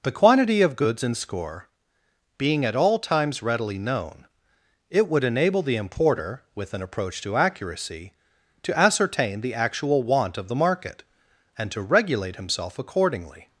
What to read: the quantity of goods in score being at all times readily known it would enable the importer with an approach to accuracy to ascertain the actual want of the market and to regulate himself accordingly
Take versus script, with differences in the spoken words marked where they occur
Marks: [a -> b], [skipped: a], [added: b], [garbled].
the quantity of goods in score being at all times readily known it would enable the importer with an approach to accuracy to ascertain the actual want of the market and to regulate himself accordingly